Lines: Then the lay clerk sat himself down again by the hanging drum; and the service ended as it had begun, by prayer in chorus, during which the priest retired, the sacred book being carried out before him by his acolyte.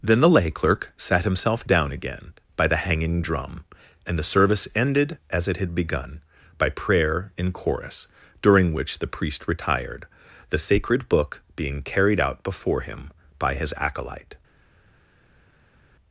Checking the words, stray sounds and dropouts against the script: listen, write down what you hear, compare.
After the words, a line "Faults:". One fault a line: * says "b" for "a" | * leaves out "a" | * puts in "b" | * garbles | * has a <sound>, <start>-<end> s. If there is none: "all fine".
Then the lay clerk sat himself down again by the hanging drum; and the service ended as it had begun, by prayer in chorus, during which the priest retired, the sacred book being carried out before him by his acolyte.
Faults:
all fine